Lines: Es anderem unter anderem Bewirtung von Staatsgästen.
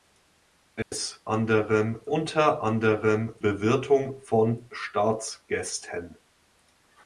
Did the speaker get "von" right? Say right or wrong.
right